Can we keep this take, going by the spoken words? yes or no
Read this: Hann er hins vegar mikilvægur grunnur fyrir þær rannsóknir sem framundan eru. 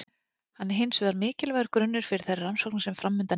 yes